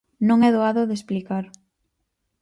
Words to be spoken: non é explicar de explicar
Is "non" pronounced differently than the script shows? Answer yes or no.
no